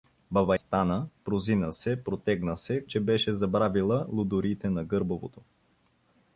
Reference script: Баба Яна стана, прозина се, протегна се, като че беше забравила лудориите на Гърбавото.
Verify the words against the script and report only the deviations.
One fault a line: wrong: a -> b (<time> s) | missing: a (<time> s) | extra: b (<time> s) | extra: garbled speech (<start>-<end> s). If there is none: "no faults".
missing: Яна (0.6 s)
missing: като (2.9 s)